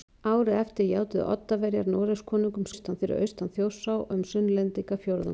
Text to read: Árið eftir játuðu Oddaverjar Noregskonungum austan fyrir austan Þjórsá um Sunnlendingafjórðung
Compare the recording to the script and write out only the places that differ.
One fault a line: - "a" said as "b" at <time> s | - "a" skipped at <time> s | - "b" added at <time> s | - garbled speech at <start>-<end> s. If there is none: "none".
none